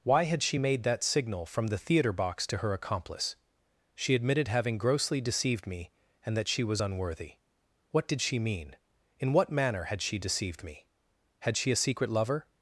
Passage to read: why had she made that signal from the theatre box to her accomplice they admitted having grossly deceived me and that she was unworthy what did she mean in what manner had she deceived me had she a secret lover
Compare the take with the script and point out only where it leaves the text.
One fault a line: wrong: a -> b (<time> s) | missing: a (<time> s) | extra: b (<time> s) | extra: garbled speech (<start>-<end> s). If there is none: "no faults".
wrong: they -> she (3.9 s)